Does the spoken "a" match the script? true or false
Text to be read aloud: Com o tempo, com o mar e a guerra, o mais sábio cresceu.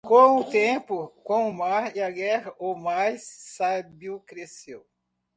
true